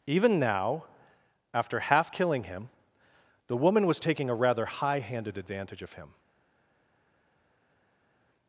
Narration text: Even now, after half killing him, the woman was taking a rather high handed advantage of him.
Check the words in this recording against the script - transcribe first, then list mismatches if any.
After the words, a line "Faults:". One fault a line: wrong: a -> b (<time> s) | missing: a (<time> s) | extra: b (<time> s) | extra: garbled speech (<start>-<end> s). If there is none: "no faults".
Even now, after half killing him, the woman was taking a rather high handed advantage of him.
Faults:
no faults